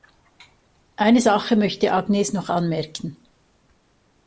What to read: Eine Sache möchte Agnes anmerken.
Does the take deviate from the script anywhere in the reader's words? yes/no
yes